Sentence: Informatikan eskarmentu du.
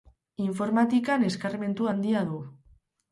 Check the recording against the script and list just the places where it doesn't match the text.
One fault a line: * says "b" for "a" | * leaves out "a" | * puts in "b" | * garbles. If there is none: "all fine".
* puts in "handia"